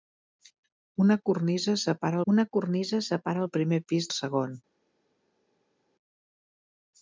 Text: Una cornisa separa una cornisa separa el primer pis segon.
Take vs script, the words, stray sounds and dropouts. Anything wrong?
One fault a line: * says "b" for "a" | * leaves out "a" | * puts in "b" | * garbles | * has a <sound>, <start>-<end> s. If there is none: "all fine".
all fine